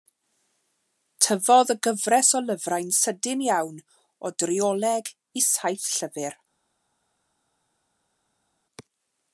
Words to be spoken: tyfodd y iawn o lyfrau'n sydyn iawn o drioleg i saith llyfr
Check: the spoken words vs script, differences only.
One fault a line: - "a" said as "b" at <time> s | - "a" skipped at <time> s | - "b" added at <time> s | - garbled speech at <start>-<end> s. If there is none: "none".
- "iawn" said as "gyfres" at 1.9 s